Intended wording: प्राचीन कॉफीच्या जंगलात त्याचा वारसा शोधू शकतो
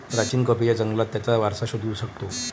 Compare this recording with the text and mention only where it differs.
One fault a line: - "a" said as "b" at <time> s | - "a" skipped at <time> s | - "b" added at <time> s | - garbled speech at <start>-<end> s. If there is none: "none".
none